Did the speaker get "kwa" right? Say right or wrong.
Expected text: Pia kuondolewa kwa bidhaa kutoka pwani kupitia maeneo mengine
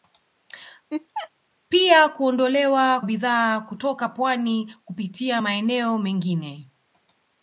wrong